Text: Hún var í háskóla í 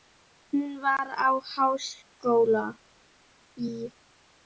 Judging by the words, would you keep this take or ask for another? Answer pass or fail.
pass